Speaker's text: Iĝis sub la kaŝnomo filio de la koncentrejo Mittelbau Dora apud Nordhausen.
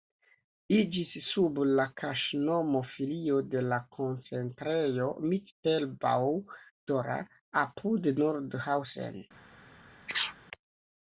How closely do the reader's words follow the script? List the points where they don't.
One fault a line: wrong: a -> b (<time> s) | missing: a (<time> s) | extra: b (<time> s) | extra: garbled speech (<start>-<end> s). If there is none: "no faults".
no faults